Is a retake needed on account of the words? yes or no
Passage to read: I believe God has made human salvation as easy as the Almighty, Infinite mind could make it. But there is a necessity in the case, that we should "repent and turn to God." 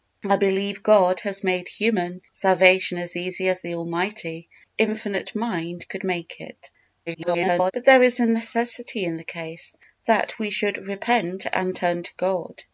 yes